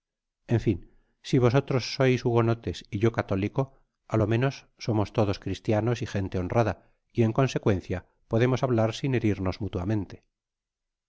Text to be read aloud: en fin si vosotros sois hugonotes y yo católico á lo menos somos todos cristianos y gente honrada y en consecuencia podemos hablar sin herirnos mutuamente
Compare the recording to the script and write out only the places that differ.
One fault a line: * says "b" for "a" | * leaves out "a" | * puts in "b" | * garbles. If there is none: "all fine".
all fine